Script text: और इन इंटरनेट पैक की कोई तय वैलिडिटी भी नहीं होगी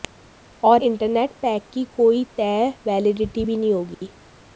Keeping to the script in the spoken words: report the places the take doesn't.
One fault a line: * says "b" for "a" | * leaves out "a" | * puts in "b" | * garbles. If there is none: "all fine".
* leaves out "इन"